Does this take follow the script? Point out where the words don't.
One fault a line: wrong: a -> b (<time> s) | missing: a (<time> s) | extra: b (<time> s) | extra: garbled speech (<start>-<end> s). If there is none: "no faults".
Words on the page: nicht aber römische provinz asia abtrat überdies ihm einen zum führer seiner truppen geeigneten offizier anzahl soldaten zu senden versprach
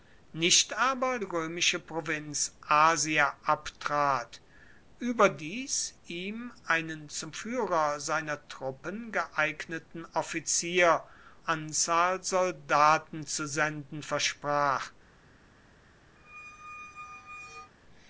no faults